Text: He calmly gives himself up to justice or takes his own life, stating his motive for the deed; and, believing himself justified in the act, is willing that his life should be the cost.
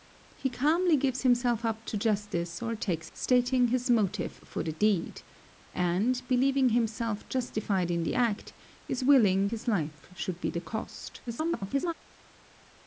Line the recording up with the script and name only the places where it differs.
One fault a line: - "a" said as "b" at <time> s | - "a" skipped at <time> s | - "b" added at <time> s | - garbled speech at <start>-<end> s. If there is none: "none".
- "his own life" skipped at 3.1 s
- "that" skipped at 9.5 s
- garbled speech at 11.3-11.9 s